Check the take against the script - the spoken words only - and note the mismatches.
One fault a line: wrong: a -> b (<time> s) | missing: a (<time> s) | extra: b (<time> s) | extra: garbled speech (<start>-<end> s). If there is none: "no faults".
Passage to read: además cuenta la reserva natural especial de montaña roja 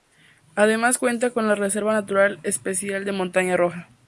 extra: con (1.3 s)